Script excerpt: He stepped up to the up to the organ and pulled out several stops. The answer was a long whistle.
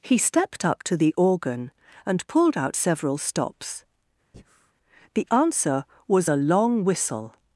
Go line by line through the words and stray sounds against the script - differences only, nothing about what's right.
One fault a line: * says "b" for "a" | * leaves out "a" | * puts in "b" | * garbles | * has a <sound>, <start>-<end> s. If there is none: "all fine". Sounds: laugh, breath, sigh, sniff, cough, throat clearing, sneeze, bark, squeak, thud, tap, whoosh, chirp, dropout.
* leaves out "up to the"
* has a breath, 4.3-4.7 s